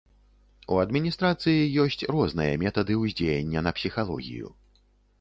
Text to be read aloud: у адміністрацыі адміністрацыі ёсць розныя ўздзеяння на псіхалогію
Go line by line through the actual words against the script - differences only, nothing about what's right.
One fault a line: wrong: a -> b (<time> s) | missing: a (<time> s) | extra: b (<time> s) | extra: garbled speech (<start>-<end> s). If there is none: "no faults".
missing: адміністрацыі (1.7 s)
extra: метады (2.6 s)